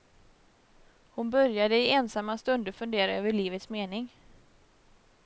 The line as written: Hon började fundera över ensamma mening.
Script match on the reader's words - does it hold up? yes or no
no